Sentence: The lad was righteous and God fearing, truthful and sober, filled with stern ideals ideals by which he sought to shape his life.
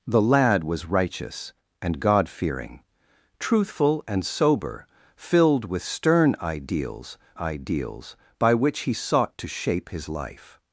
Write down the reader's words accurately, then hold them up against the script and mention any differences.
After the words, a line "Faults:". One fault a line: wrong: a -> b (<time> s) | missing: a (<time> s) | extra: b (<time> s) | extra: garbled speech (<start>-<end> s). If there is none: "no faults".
The lad was righteous and God fearing, truthful and sober, filled with stern ideals ideals by which he sought to shape his life.
Faults:
no faults